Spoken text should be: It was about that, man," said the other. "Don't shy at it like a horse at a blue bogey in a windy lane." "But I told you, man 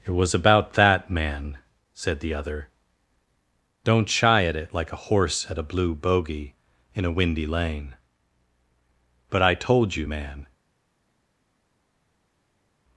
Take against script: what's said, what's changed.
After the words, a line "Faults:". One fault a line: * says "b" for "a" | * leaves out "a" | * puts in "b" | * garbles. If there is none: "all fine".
It was about that, man," said the other. "Don't shy at it like a horse at a blue bogey in a windy lane." "But I told you, man
Faults:
all fine